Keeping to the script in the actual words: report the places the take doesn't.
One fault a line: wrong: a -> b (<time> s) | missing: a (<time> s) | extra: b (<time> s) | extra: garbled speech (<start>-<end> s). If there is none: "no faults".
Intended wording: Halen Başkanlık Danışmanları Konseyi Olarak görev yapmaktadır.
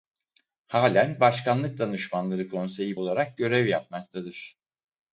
no faults